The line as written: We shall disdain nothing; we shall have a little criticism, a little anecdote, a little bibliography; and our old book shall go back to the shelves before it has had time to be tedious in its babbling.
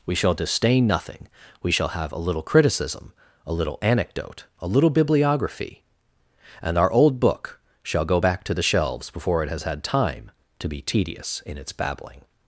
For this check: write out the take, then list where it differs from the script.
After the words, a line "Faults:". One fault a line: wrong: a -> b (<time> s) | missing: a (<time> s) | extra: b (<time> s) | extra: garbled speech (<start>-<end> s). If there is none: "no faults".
We shall disdain nothing; we shall have a little criticism, a little anecdote, a little bibliography; and our old book shall go back to the shelves before it has had time to be tedious in its babbling.
Faults:
no faults